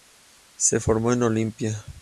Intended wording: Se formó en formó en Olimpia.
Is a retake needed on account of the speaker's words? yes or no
yes